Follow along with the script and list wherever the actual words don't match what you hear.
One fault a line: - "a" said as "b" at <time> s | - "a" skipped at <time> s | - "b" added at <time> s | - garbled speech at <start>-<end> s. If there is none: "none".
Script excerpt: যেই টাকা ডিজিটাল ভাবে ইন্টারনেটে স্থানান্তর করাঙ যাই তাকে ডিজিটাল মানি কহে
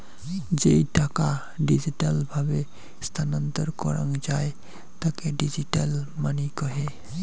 - "ইন্টারনেটে" skipped at 2.6 s